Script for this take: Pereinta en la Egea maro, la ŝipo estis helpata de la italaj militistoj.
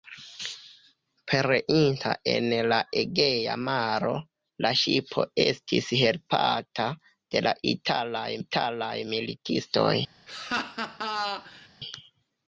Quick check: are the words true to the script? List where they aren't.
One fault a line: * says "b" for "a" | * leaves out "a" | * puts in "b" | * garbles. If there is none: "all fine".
* puts in "italaj"